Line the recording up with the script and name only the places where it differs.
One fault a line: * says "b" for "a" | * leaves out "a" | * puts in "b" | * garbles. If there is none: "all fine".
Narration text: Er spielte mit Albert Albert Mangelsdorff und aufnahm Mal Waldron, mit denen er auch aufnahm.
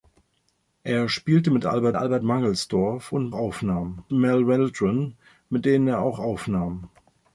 all fine